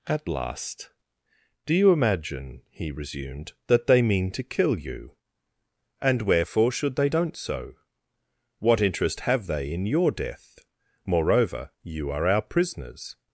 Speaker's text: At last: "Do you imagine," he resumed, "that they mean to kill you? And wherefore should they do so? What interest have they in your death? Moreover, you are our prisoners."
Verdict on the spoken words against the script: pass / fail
fail